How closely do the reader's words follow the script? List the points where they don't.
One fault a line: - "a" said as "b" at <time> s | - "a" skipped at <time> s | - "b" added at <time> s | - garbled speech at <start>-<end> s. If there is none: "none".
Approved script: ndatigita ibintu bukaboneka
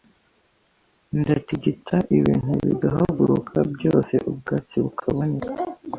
- "bigahaguruka byose ubwatsi" added at 2.6 s